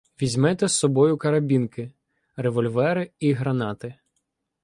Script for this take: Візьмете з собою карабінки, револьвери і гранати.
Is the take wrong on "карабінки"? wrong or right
right